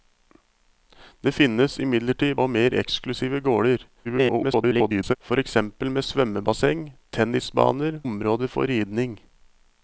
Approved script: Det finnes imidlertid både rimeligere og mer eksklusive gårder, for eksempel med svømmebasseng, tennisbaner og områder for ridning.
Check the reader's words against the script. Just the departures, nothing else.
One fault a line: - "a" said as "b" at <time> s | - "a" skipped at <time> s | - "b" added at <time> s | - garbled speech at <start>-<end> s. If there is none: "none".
- "både rimeligere" skipped at 2.4 s
- garbled speech at 4.0-5.2 s
- "og" skipped at 8.0 s